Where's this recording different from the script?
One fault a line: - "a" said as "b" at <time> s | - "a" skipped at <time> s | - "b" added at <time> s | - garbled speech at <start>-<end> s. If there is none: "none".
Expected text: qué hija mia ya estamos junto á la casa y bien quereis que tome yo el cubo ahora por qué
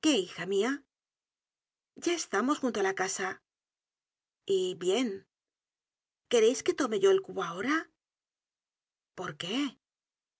none